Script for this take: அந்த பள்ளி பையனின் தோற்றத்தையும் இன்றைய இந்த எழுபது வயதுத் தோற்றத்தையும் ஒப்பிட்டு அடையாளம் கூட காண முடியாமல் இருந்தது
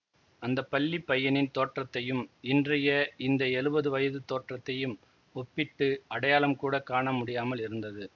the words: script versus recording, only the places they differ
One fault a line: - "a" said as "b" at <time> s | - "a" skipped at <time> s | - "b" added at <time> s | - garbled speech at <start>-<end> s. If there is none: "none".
none